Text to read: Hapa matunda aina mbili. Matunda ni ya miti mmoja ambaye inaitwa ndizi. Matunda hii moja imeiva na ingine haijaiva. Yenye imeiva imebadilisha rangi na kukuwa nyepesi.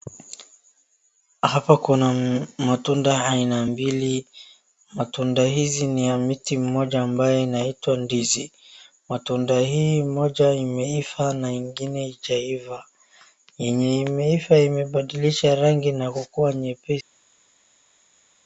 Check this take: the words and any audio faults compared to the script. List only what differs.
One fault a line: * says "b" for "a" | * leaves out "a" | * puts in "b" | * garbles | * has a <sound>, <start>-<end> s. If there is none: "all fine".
* puts in "kuna"
* puts in "hizi"